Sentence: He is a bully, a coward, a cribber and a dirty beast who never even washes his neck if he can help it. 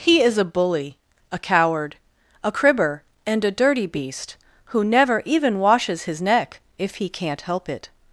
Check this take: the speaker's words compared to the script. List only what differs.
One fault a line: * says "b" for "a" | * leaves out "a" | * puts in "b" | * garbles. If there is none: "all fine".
* says "can't" for "can"